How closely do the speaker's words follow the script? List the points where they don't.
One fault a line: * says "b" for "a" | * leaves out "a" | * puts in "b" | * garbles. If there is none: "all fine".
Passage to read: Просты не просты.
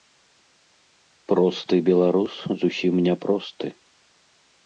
* puts in "беларус зусім"